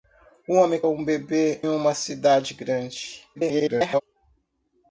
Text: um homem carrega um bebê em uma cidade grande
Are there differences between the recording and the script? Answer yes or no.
yes